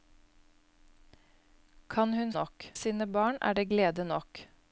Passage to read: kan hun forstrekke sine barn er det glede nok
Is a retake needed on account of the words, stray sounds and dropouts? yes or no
yes